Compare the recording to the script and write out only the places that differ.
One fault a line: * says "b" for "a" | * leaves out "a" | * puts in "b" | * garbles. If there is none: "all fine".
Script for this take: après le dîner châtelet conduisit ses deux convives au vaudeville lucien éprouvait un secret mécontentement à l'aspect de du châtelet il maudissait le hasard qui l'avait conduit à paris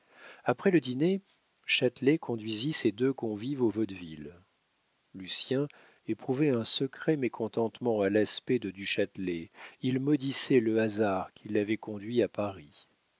all fine